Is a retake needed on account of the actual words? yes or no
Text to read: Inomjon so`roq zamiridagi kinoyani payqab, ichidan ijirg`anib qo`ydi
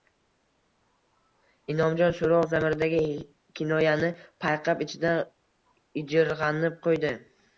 no